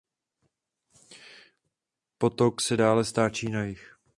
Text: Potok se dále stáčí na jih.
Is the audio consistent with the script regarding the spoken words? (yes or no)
yes